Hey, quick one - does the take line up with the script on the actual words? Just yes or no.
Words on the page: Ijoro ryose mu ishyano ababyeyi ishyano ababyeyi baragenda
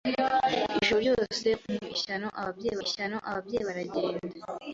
yes